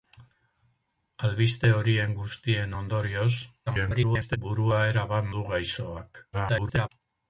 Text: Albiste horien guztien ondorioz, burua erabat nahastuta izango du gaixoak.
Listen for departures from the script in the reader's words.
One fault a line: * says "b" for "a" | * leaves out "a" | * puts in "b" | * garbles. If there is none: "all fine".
* garbles
* leaves out "nahastuta izango"
* garbles